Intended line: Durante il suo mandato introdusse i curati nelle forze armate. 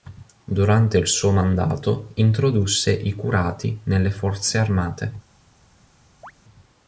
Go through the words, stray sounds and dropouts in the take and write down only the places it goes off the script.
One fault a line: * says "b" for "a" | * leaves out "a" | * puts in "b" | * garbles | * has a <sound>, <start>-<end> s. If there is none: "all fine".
* has a chirp, 6.2-6.3 s